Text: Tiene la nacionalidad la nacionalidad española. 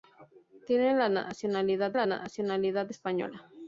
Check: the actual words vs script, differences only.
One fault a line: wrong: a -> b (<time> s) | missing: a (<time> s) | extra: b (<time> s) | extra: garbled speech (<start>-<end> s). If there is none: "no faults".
no faults